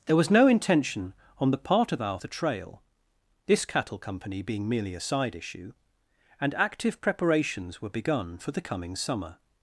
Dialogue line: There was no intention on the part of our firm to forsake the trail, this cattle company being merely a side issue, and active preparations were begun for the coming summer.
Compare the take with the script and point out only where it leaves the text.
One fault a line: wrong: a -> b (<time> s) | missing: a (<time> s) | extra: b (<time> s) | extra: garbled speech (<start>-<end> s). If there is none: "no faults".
missing: firm to forsake (2.2 s)